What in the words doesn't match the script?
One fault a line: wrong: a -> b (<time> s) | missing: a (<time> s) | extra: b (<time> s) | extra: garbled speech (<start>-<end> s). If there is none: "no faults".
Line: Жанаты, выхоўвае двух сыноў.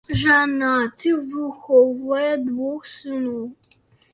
no faults